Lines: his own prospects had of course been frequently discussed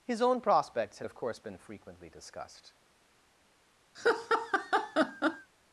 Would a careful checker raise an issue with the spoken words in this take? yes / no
no